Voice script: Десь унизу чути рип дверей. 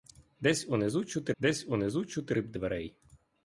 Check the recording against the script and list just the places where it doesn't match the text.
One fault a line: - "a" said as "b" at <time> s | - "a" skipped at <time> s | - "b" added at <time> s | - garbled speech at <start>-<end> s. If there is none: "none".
- "десь унизу чути" added at 1.4 s